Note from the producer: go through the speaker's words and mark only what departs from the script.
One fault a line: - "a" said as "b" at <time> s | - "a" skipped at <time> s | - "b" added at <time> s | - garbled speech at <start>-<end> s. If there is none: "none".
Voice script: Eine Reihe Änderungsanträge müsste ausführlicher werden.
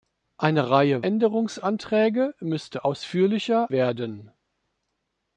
none